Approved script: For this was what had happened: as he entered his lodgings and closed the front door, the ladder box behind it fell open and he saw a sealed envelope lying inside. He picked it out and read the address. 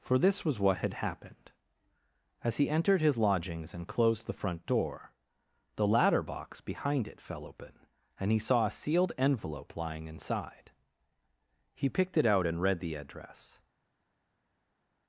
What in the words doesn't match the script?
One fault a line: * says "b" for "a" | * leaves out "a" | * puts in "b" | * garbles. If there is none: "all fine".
all fine